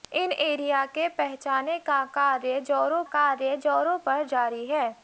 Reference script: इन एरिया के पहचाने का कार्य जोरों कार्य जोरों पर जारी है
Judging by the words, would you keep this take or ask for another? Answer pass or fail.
pass